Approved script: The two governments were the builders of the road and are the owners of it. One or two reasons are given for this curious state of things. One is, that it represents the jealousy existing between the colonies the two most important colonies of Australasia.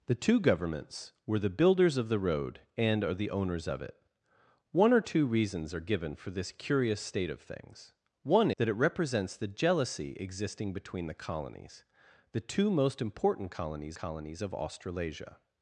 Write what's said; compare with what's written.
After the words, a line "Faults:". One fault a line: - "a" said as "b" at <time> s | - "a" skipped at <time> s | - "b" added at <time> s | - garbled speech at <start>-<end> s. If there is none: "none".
The two governments were the builders of the road and are the owners of it. One or two reasons are given for this curious state of things. One that it represents the jealousy existing between the colonies the two most important colonies colonies of Australasia.
Faults:
- "is" skipped at 8.5 s
- "colonies" added at 13.9 s